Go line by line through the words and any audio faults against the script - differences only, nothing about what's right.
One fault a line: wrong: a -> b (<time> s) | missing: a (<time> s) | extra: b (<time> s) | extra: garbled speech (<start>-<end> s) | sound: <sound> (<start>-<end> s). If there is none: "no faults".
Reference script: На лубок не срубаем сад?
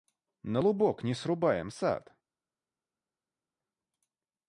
no faults